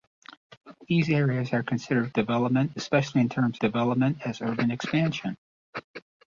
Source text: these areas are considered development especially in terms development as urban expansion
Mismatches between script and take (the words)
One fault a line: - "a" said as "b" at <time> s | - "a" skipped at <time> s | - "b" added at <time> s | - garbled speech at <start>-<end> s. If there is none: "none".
none